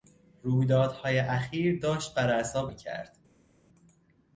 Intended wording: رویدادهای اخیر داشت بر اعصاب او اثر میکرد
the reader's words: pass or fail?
fail